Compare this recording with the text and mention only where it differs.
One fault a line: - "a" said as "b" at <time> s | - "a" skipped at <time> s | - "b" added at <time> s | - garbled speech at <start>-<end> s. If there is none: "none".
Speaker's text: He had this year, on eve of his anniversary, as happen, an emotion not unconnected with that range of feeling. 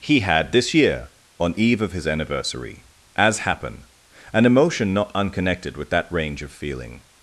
none